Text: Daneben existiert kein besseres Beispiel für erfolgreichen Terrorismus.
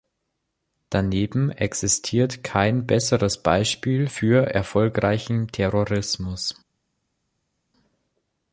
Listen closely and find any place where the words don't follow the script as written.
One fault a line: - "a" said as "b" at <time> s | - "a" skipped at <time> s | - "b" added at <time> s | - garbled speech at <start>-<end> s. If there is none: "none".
none